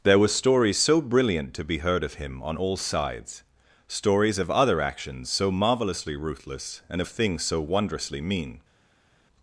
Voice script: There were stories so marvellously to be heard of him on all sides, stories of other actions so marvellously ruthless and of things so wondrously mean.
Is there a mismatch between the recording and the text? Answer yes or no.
yes